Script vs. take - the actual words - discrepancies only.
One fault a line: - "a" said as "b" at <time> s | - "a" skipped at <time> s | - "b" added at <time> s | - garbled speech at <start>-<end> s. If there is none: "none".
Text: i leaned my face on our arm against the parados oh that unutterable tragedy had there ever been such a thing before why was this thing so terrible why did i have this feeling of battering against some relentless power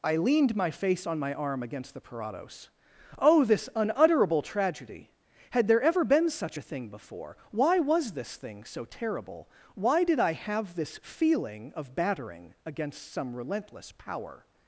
- "our" said as "my" at 1.2 s
- "that" said as "this" at 3.5 s